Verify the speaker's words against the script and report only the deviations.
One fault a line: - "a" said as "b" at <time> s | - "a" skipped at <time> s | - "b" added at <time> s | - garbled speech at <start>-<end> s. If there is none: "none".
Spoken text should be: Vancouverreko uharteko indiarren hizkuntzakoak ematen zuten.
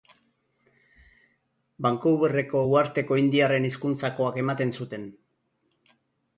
none